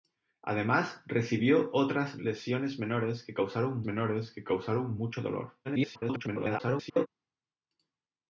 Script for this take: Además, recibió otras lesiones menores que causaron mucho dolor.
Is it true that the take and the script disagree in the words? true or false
true